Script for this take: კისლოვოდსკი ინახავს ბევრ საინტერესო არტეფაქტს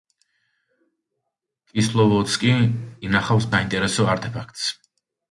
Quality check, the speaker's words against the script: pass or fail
fail